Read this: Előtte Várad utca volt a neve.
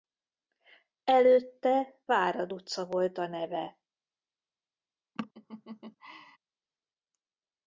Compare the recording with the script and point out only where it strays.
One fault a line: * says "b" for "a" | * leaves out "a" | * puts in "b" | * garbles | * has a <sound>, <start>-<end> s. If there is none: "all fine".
* has a laugh, 5.2-6.4 s